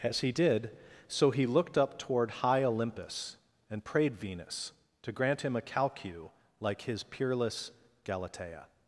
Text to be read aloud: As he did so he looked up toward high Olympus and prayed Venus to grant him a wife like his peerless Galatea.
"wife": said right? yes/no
no